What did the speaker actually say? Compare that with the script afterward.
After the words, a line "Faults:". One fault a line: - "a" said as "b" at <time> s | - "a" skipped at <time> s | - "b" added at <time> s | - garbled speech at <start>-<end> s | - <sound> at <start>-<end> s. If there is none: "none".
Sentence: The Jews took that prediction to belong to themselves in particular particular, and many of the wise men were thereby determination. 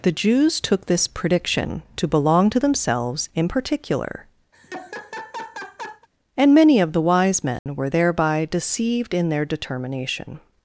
The Jews took this prediction to belong to themselves in particular, and many of the wise men were thereby deceived in their determination.
Faults:
- "that" said as "this" at 0.9 s
- "particular" skipped at 4.3 s
- laugh at 4.5-6.1 s
- dropout at 7.6-7.7 s
- "deceived in their" added at 8.5 s